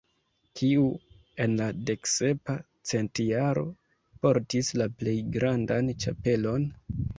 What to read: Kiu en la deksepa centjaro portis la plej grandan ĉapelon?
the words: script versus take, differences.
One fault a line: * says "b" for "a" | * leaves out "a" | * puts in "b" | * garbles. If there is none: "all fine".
all fine